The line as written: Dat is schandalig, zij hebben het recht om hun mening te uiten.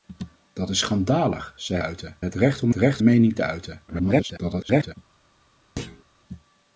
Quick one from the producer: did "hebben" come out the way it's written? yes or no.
no